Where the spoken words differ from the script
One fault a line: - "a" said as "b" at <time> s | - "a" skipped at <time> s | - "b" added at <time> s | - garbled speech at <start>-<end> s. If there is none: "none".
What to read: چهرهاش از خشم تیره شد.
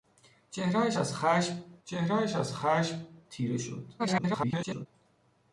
- "چهرهاش از خشم" added at 1.8 s
- garbled speech at 4.0-4.9 s